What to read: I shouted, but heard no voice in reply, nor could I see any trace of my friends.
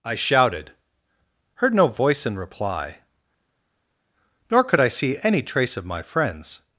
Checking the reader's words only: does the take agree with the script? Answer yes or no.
no